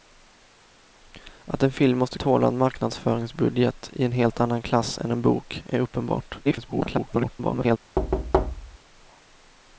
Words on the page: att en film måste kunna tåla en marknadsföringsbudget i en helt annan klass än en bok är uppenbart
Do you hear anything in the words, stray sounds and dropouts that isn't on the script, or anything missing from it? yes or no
yes